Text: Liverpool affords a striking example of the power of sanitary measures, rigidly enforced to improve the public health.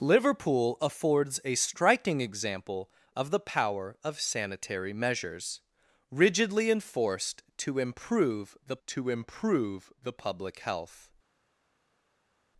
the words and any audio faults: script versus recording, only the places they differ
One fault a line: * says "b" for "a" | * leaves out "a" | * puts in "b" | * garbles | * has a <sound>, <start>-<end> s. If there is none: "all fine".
* puts in "to improve the"